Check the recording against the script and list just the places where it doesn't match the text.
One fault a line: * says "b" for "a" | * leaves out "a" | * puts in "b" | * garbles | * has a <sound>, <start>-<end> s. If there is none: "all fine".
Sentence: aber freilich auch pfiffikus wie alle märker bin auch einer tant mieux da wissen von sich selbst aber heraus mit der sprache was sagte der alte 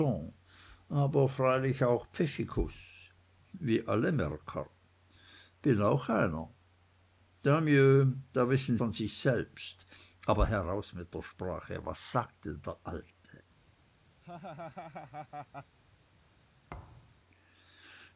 * has a laugh, 14.2-15.8 s
* has a thud, 16.7-17.2 s